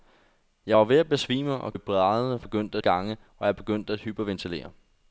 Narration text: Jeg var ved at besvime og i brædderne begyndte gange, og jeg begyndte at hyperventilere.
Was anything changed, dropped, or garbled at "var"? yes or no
no